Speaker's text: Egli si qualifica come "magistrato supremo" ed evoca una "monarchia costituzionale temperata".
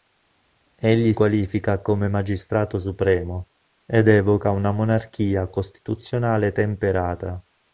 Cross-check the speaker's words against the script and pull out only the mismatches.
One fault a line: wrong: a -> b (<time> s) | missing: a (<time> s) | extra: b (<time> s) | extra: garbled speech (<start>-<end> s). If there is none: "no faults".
missing: si (1.1 s)